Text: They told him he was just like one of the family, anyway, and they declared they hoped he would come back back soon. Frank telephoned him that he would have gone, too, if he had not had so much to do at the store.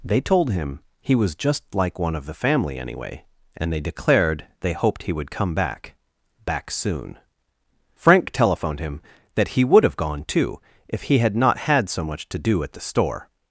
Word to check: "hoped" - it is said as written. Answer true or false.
true